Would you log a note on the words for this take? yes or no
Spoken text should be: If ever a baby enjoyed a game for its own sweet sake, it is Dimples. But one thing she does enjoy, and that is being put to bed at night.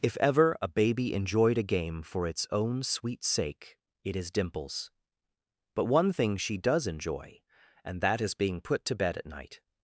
no